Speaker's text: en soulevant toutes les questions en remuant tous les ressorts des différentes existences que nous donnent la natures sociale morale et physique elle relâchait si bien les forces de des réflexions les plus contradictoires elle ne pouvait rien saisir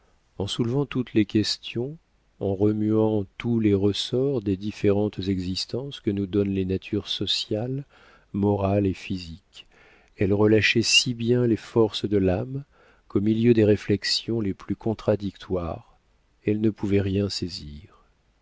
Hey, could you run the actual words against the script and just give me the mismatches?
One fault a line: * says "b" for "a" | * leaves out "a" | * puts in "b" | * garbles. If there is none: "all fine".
* says "les" for "la"
* puts in "l'âme qu'au milieu"